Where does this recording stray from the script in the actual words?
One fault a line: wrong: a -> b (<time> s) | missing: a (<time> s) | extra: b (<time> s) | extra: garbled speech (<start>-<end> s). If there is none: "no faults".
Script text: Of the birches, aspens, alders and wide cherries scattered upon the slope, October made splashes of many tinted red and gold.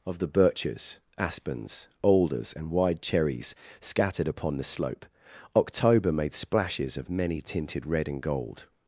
no faults